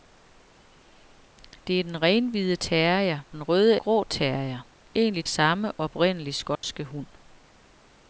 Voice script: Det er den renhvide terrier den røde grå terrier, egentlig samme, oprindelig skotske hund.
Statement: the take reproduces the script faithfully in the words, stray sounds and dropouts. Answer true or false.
false